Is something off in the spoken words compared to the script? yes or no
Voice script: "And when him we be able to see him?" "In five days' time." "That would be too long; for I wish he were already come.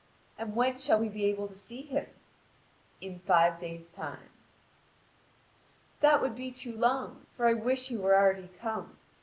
yes